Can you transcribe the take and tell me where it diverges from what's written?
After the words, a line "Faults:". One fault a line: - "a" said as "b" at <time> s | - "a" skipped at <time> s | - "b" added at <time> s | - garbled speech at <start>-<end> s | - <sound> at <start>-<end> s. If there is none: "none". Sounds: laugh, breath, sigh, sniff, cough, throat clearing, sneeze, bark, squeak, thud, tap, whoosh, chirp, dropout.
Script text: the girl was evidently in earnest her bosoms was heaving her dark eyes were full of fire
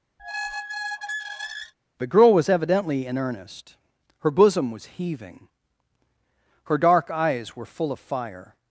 the girl was evidently in earnest her bosom was heaving her dark eyes were full of fire
Faults:
- squeak at 0.2-1.7 s
- "bosoms" said as "bosom" at 4.3 s